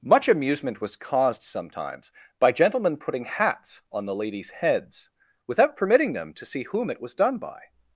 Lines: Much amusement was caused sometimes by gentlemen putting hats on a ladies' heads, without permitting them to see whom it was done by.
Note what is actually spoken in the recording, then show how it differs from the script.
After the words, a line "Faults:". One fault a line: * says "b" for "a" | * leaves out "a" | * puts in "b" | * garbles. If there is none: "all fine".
Much amusement was caused sometimes by gentlemen putting hats on the ladies' heads, without permitting them to see whom it was done by.
Faults:
* says "the" for "a"